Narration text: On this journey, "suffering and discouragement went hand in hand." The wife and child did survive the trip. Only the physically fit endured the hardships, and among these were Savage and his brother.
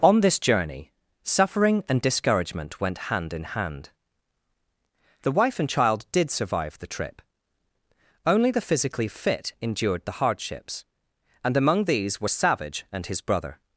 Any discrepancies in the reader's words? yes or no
no